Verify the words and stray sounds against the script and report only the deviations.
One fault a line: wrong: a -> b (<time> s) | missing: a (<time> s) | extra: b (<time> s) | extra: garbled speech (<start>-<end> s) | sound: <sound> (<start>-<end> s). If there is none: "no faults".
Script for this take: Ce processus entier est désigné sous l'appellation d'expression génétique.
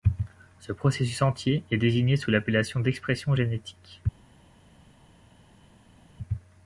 no faults